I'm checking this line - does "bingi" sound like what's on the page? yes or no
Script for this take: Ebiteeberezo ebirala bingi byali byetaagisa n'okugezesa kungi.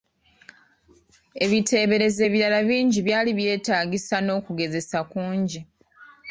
yes